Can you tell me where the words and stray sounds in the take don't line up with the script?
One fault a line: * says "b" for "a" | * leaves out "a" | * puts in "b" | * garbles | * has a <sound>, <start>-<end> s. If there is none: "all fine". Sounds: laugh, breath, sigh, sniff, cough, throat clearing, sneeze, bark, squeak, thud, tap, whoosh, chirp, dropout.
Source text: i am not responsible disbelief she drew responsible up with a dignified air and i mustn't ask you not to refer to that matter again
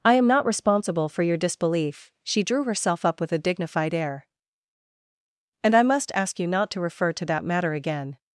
* puts in "for your"
* says "herself" for "responsible"
* says "must" for "mustn't"